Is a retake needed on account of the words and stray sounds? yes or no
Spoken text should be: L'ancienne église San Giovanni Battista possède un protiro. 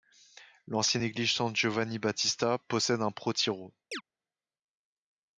yes